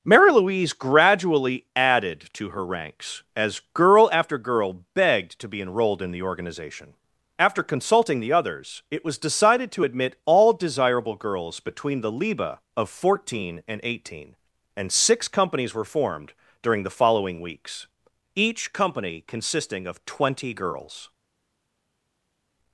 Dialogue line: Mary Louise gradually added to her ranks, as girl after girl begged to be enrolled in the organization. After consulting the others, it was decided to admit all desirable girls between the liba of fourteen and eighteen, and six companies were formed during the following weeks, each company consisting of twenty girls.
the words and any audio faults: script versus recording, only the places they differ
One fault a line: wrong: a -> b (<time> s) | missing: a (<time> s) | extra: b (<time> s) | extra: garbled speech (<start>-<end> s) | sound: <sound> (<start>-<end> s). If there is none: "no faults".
no faults